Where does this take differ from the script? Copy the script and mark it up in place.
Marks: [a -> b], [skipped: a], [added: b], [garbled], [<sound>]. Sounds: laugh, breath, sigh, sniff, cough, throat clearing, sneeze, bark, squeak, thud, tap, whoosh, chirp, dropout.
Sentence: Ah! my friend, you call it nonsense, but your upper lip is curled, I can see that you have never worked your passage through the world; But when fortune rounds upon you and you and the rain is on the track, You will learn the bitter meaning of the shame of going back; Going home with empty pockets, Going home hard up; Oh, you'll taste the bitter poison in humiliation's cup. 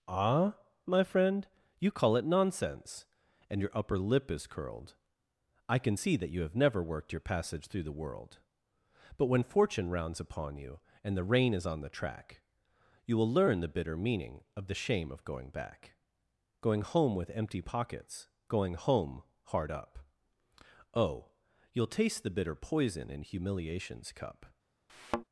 Ah! my friend, you call it nonsense, [but -> and] your upper lip is curled, I can see that you have never worked your passage through the world; But when fortune rounds upon you and [skipped: you and] the rain is on the track, You will learn the bitter meaning of the shame of going back; Going home with empty pockets, Going home hard up; Oh, you'll taste the bitter poison in humiliation's cup. [thud]